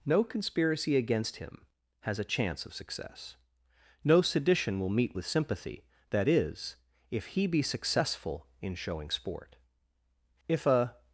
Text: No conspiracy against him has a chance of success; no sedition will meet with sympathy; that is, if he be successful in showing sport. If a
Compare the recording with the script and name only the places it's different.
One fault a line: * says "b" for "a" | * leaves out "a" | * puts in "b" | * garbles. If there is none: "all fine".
all fine